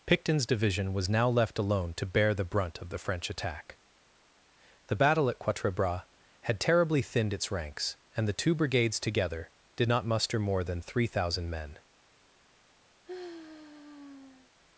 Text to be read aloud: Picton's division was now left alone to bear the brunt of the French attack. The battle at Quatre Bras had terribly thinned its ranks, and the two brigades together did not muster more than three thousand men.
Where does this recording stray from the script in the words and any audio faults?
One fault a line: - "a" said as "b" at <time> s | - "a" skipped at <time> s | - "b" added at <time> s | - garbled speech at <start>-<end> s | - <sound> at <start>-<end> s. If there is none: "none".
- sigh at 13.0-14.5 s